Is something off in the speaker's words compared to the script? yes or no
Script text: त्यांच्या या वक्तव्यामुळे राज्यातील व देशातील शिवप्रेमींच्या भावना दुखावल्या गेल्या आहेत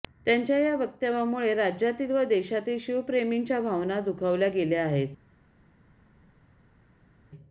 no